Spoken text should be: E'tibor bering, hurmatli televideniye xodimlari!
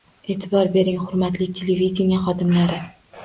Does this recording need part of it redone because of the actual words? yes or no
no